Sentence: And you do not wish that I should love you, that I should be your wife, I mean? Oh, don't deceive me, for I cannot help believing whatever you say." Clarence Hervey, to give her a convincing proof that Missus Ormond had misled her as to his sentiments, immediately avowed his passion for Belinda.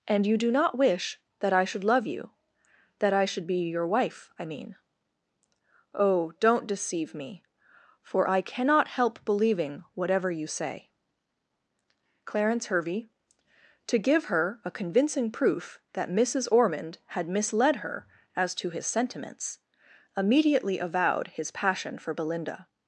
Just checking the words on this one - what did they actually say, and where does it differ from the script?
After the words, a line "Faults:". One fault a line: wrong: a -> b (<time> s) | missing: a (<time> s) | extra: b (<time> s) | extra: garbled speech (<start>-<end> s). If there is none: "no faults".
And you do not wish that I should love you, that I should be your wife, I mean? Oh, don't deceive me, for I cannot help believing whatever you say." Clarence Hervey, to give her a convincing proof that Missus Ormond had misled her as to his sentiments, immediately avowed his passion for Belinda.
Faults:
no faults